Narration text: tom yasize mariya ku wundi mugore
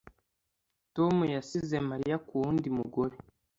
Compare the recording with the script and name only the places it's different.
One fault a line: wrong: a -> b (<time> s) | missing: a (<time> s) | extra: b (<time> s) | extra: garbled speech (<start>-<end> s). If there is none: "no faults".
no faults